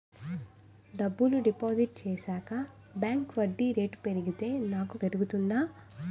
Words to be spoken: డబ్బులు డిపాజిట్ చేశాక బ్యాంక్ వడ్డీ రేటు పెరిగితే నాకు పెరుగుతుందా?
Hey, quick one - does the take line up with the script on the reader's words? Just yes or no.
yes